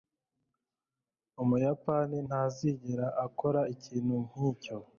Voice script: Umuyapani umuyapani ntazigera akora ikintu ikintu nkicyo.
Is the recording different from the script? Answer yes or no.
yes